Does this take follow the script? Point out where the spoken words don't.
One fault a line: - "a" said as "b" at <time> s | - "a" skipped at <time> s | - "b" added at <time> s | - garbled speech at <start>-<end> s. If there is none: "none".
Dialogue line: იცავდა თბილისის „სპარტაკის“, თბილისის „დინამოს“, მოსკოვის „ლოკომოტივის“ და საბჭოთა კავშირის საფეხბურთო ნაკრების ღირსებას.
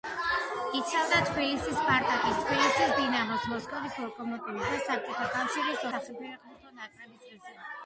none